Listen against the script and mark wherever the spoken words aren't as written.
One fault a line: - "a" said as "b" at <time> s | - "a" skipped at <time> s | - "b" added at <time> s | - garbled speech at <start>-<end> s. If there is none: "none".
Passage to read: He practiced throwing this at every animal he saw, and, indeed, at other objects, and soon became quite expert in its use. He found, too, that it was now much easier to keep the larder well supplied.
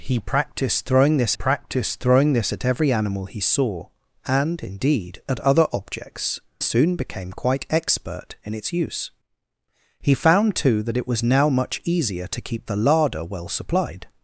- "practiced throwing this" added at 1.3 s
- "and" skipped at 6.4 s